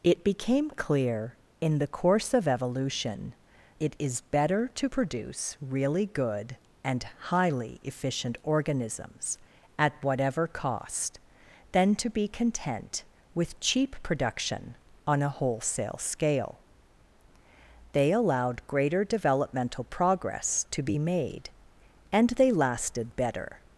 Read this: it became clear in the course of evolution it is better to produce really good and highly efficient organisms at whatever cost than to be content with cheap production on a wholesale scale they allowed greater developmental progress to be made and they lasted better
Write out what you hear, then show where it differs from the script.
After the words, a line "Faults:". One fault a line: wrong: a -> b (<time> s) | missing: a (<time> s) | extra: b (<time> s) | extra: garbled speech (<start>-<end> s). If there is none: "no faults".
it became clear in the course of evolution it is better to produce really good and highly efficient organisms at whatever cost than to be content with cheap production on a wholesale scale they allowed greater developmental progress to be made and they lasted better
Faults:
no faults